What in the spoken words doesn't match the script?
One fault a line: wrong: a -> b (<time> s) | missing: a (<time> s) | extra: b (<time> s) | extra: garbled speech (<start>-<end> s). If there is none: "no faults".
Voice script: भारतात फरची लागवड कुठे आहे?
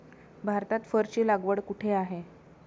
no faults